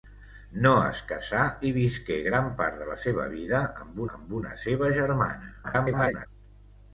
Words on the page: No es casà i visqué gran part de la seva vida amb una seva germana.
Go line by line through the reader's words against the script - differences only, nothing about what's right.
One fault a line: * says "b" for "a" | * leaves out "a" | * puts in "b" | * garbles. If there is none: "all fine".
* puts in "amb"
* garbles